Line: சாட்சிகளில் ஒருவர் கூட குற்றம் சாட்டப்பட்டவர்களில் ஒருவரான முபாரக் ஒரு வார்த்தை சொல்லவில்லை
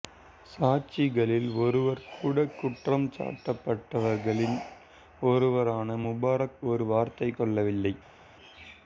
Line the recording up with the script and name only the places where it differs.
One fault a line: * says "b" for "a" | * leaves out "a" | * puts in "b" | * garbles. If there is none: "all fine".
all fine